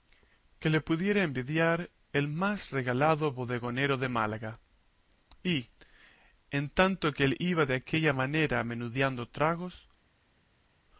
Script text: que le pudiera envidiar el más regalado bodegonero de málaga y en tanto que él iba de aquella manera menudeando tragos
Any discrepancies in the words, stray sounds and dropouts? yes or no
no